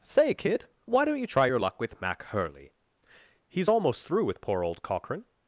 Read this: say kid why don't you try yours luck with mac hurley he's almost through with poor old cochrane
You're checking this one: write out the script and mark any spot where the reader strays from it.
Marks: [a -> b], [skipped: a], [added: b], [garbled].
say kid why don't you try [yours -> your] luck with mac hurley he's almost through with poor old cochrane